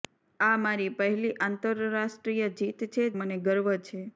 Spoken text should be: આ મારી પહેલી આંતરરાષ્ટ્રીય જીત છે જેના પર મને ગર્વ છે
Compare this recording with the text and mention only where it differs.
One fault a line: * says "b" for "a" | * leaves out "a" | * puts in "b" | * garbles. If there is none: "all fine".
* leaves out "જેના પર"